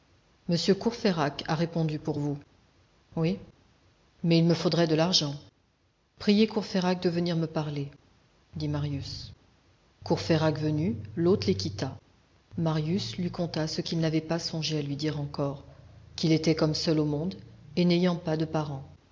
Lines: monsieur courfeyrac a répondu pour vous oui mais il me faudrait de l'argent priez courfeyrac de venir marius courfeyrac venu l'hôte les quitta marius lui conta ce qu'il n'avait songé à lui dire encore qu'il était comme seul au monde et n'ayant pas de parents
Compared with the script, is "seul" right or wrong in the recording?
right